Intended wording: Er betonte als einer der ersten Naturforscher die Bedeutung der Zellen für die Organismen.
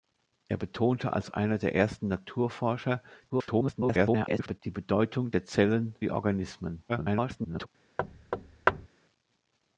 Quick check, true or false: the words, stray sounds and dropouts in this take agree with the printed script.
false